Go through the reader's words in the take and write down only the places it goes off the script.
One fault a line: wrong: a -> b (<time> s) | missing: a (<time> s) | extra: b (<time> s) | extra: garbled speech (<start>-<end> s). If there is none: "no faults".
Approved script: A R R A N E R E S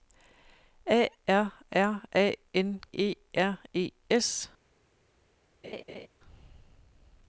no faults